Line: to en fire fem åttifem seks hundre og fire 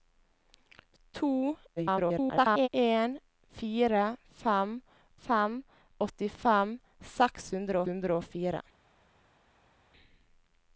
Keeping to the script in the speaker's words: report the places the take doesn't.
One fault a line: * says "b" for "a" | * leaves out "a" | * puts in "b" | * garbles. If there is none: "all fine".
* garbles
* puts in "fem"
* puts in "hundre"